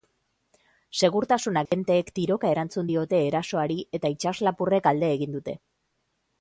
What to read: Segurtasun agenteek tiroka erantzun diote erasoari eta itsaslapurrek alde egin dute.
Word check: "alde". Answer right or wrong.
right